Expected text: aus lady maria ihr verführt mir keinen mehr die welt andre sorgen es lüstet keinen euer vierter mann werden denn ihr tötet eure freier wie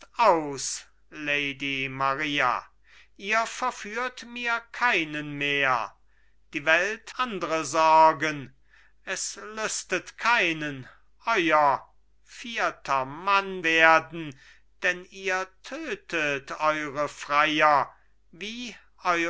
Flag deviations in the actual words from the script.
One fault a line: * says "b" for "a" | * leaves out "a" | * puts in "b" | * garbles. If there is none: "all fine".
all fine